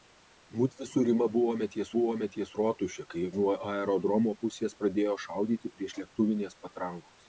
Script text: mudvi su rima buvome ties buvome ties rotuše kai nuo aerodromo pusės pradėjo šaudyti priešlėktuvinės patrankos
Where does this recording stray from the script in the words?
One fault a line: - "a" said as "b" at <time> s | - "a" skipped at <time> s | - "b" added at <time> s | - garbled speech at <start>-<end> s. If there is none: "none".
none